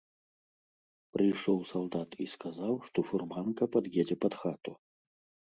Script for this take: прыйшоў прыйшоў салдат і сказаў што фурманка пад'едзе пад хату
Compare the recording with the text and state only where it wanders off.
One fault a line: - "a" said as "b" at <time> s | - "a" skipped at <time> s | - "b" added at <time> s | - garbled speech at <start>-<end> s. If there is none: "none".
- "прыйшоў" skipped at 1.6 s